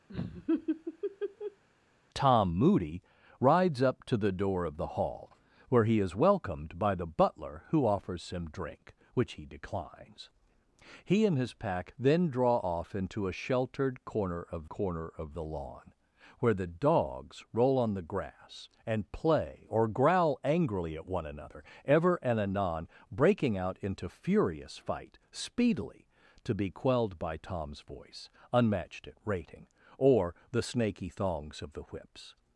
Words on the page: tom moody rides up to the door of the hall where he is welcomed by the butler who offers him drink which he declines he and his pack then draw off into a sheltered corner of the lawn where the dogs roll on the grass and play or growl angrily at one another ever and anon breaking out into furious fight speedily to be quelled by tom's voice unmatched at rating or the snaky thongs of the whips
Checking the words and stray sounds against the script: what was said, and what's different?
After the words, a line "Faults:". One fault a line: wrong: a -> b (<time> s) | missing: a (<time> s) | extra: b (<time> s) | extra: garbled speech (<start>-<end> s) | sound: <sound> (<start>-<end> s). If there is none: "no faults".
tom moody rides up to the door of the hall where he is welcomed by the butler who offers him drink which he declines he and his pack then draw off into a sheltered corner of corner of the lawn where the dogs roll on the grass and play or growl angrily at one another ever and anon breaking out into furious fight speedily to be quelled by tom's voice unmatched at rating or the snaky thongs of the whips
Faults:
sound: laugh (0.1-1.6 s)
extra: corner of (14.7 s)